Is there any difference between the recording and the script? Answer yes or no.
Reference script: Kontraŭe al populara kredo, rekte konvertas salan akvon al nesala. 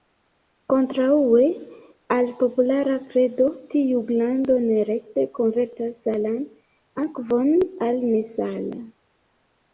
yes